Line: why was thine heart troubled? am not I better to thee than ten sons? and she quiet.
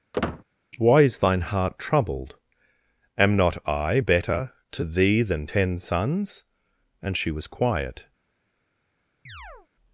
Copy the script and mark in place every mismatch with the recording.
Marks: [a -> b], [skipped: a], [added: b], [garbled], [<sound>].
[squeak] why [was -> is] thine heart troubled? am not I better to thee than ten sons? and she [added: was] quiet. [chirp]